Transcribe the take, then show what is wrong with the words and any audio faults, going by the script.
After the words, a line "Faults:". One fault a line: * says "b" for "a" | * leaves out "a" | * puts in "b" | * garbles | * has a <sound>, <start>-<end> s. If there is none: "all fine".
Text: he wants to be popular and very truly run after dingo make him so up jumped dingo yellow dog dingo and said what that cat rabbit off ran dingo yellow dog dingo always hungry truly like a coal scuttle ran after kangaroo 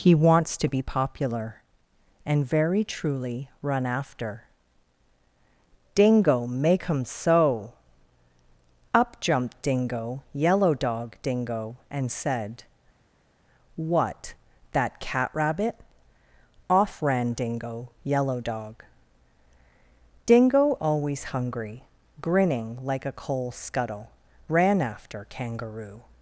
he wants to be popular and very truly run after dingo make him so up jumped dingo yellow dog dingo and said what that cat rabbit off ran dingo yellow dog dingo always hungry grinning like a coal scuttle ran after kangaroo
Faults:
* says "grinning" for "truly"